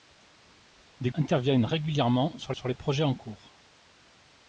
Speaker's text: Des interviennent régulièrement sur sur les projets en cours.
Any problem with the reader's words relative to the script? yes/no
no